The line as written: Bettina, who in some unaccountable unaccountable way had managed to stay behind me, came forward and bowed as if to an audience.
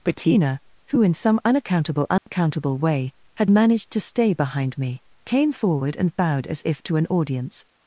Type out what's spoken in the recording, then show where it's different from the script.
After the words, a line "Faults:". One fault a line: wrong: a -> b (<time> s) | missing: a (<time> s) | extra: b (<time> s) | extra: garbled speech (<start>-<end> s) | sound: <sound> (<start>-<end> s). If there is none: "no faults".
Bettina, who in some unaccountable unaccountable way had managed to stay behind me, came forward and bowed as if to an audience.
Faults:
sound: dropout (2.2-2.3 s)